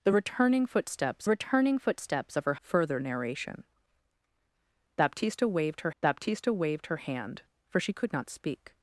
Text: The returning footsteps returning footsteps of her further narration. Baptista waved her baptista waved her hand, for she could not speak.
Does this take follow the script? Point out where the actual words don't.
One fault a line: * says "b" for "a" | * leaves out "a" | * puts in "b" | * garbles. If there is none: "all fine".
all fine